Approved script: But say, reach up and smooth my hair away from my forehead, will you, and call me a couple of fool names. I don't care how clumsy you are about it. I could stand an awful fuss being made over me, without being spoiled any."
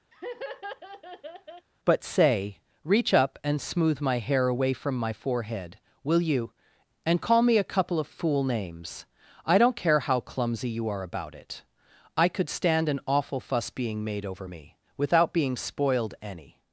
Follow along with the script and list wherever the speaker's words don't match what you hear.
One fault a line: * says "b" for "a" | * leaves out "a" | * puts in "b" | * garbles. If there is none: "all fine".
all fine